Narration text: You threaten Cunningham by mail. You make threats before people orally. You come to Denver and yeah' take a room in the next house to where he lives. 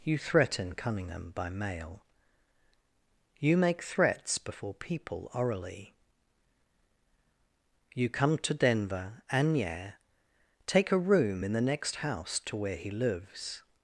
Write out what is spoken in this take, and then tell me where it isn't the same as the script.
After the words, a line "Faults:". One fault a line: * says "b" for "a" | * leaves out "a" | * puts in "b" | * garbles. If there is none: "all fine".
You threaten Cunningham by mail. You make threats before people orally. You come to Denver and yeah' take a room in the next house to where he lives.
Faults:
all fine